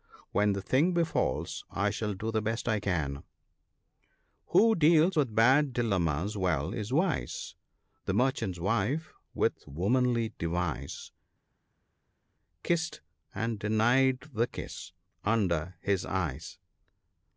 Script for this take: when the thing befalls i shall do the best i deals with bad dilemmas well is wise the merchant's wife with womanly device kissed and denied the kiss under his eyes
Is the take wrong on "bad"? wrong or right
right